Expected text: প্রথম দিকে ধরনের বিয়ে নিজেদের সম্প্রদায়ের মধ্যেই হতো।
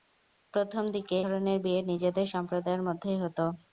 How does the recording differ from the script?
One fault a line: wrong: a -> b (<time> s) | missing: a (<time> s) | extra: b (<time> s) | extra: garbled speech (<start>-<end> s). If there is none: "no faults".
no faults